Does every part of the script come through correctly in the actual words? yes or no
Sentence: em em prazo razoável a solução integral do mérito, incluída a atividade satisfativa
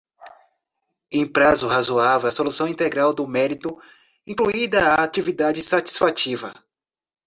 no